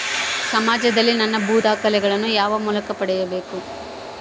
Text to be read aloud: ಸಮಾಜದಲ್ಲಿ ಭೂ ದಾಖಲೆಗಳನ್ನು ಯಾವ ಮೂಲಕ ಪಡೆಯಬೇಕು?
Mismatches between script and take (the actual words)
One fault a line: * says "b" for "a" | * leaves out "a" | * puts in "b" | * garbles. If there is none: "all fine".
* puts in "ನನ್ನ"